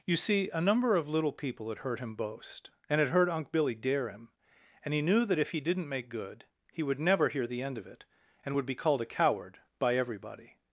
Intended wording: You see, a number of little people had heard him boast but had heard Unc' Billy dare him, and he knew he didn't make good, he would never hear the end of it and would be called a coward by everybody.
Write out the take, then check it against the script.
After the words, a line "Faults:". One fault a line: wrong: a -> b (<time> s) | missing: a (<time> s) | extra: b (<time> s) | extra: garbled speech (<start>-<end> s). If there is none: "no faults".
You see, a number of little people had heard him boast and had heard Unc' Billy dare him, and he knew that if he didn't make good, he would never hear the end of it and would be called a coward by everybody.
Faults:
wrong: but -> and (2.9 s)
extra: that if (5.2 s)